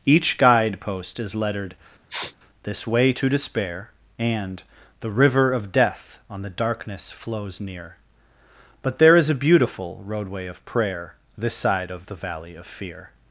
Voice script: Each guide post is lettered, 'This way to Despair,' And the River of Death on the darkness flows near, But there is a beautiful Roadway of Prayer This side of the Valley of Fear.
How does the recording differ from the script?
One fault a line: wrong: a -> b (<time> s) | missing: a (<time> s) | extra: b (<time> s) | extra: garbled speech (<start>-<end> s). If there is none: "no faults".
no faults